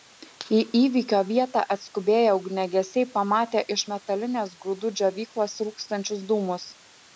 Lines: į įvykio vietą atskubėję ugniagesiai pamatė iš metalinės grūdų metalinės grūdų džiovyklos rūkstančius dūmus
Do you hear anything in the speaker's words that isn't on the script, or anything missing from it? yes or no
yes